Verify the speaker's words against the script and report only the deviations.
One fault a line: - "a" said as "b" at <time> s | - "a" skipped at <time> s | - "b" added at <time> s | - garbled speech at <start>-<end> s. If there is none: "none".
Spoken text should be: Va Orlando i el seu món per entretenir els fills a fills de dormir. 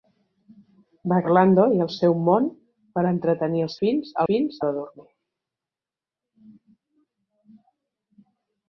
none